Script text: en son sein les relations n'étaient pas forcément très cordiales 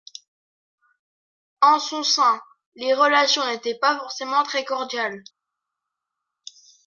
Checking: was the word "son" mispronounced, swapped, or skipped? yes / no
no